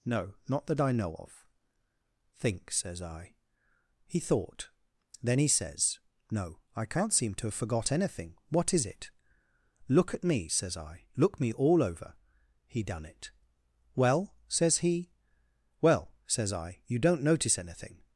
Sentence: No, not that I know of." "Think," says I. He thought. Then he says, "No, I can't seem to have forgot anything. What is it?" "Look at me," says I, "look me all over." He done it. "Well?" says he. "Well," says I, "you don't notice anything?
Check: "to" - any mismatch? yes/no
no